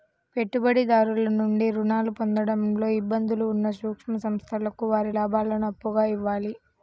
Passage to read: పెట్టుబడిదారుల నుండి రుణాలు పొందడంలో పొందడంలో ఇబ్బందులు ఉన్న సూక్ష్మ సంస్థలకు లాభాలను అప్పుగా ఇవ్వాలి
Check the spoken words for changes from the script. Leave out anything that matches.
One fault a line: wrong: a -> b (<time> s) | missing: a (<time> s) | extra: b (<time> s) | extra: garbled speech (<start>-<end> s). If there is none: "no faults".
missing: పొందడంలో (2.9 s)
extra: వారి (4.9 s)